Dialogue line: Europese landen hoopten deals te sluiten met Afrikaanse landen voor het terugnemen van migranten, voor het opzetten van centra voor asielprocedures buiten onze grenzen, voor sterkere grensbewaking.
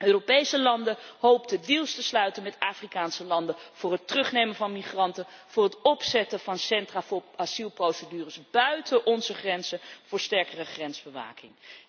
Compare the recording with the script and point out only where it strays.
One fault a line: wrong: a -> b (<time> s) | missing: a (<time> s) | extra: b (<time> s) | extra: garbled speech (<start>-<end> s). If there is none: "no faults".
no faults